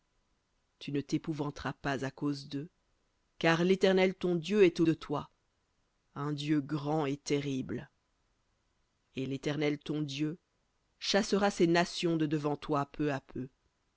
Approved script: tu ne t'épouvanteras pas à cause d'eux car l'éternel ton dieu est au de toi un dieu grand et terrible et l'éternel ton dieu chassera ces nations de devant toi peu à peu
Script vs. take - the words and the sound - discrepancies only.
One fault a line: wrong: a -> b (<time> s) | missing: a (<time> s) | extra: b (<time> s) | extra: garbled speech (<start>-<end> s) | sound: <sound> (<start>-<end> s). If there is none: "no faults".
no faults